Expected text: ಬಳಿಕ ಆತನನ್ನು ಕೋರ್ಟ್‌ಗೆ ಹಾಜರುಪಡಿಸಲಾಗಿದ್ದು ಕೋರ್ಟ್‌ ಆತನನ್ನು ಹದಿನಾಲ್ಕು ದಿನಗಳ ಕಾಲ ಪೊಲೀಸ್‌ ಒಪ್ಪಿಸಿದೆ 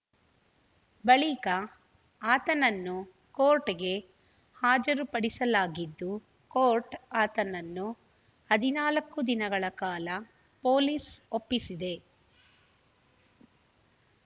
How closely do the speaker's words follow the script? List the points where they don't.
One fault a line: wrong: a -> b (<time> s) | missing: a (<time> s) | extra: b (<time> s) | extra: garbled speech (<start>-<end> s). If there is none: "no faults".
no faults